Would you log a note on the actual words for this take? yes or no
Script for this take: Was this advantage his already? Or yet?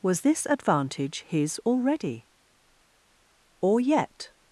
no